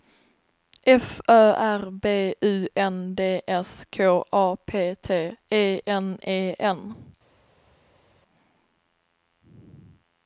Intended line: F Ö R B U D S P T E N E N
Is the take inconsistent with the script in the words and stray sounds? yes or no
yes